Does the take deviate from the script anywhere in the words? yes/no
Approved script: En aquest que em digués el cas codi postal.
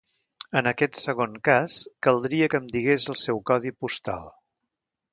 yes